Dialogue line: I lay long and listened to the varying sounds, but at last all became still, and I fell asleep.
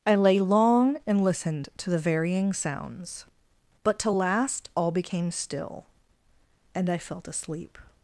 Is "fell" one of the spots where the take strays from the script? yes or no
yes